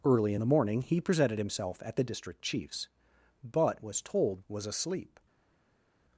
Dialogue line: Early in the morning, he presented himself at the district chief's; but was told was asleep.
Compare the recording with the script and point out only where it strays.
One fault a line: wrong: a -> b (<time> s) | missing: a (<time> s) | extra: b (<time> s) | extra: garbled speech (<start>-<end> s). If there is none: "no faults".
no faults